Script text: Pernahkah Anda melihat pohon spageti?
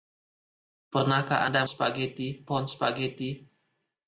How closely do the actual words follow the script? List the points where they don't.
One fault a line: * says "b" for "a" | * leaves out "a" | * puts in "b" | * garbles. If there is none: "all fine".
* says "spageti" for "melihat"